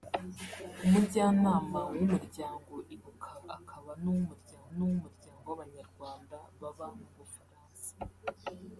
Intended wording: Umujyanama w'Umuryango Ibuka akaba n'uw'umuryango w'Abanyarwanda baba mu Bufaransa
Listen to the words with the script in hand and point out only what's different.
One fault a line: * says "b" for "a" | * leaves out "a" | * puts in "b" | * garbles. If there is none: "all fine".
* puts in "n'uw'umuryango"